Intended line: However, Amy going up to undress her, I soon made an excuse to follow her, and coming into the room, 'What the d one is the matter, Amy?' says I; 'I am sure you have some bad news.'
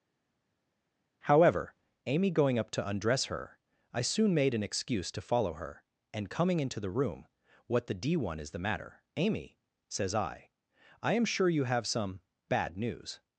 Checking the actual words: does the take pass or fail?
pass